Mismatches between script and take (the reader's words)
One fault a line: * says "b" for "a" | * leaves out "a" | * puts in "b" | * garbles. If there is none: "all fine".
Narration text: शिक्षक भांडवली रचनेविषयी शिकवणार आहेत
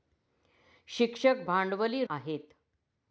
* leaves out "रचनेविषयी शिकवणार"